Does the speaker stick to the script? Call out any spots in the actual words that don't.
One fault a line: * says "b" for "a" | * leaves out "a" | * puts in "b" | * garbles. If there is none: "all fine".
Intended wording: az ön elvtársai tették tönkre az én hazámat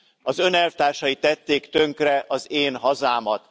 all fine